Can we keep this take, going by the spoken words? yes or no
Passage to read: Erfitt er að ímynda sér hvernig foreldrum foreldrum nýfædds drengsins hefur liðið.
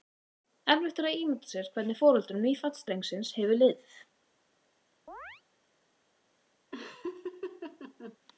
no